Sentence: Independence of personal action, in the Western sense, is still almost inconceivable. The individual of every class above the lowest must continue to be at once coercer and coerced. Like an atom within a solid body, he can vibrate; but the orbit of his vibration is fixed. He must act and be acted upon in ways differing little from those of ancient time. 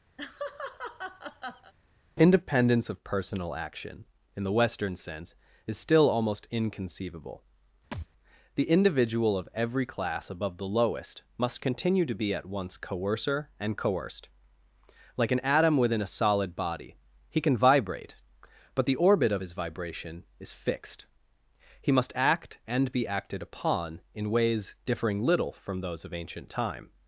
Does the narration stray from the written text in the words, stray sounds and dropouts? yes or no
yes